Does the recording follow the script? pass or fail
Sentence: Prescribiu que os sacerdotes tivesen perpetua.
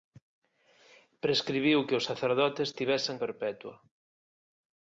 pass